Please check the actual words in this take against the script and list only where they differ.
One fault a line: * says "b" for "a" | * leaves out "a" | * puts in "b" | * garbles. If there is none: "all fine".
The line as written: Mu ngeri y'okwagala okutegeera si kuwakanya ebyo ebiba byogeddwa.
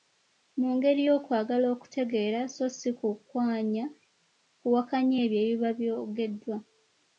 * puts in "so"